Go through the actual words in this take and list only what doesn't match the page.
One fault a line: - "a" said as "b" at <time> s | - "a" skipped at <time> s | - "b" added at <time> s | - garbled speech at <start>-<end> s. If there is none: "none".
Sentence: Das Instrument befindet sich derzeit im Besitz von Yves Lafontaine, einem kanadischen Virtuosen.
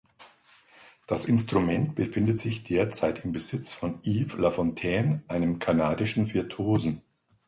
none